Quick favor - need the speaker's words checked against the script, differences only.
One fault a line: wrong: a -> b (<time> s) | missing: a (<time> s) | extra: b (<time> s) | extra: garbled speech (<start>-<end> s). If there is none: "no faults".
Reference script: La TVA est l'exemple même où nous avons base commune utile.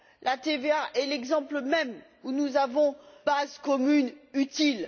no faults